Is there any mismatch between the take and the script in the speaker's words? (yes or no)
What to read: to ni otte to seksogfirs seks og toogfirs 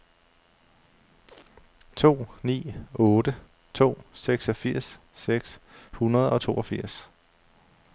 yes